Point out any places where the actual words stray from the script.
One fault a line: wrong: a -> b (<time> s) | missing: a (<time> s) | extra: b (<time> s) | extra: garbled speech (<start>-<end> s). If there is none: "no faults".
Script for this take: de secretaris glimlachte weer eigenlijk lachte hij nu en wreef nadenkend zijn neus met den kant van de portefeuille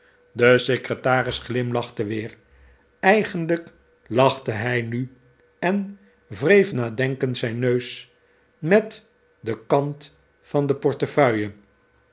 no faults